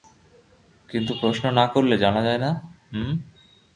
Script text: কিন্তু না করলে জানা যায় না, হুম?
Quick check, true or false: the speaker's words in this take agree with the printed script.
false